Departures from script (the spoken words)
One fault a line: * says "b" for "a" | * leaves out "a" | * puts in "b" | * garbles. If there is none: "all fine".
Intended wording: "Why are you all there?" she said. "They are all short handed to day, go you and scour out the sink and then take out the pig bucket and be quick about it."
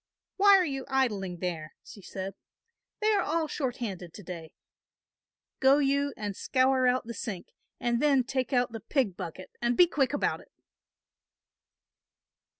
* says "idling" for "all"